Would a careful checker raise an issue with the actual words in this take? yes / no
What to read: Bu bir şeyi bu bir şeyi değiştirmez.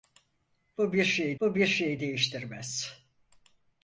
no